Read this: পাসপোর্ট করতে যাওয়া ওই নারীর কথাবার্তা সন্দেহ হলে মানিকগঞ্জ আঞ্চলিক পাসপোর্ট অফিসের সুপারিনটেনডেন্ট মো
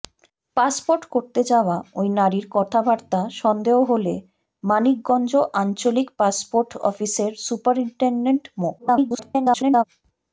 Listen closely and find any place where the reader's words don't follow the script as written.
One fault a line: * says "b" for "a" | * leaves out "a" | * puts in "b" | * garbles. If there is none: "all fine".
* garbles